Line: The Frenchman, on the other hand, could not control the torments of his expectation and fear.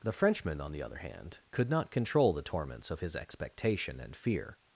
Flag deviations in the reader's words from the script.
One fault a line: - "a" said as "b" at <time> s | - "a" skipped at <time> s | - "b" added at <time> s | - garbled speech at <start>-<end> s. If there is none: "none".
none